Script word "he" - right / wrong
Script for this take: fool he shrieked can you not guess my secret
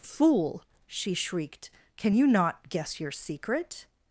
wrong